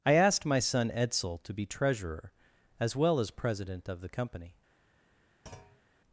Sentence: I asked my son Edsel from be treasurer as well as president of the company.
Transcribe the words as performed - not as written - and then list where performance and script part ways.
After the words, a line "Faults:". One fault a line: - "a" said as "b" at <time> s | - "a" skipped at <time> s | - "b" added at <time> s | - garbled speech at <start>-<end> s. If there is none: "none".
I asked my son Edsel to be treasurer as well as president of the company.
Faults:
- "from" said as "to" at 1.4 s